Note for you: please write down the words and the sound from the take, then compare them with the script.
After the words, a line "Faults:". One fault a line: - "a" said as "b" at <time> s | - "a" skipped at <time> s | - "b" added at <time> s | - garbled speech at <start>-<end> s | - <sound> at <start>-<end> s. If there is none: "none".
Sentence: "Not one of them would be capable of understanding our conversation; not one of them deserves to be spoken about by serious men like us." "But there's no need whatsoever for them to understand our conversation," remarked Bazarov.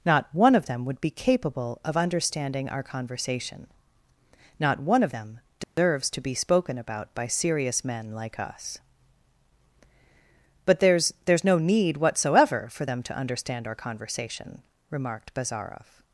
"Not one of them would be capable of understanding our conversation; not one of them deserves to be spoken about by serious men like us." "But there's there's no need whatsoever for them to understand our conversation," remarked Bazarov.
Faults:
- dropout at 5.6-5.8 s
- "there's" added at 11.2 s